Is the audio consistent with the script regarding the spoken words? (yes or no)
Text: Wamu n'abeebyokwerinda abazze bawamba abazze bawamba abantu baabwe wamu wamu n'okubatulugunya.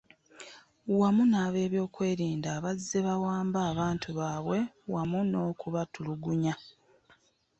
no